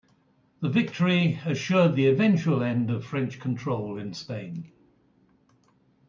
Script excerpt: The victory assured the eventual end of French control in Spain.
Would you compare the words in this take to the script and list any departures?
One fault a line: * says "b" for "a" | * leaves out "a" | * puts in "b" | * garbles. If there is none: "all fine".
all fine